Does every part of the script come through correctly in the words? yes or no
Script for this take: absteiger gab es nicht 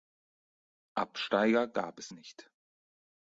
yes